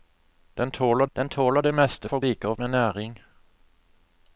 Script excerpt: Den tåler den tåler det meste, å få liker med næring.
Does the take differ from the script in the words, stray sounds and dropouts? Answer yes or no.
no